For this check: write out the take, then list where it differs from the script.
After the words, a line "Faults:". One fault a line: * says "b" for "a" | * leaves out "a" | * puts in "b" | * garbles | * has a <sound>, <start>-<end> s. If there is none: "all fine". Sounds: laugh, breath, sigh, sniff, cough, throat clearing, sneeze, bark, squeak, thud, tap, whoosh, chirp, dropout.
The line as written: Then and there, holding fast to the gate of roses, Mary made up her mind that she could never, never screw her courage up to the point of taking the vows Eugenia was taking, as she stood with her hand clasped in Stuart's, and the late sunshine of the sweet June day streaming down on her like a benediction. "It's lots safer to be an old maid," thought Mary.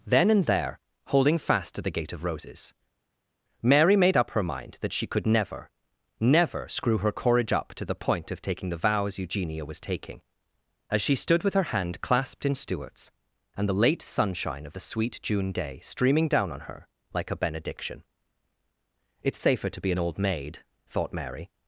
Then and there, holding fast to the gate of roses, Mary made up her mind that she could never, never screw her courage up to the point of taking the vows Eugenia was taking, as she stood with her hand clasped in Stuart's, and the late sunshine of the sweet June day streaming down on her like a benediction. "It's safer to be an old maid," thought Mary.
Faults:
* leaves out "lots"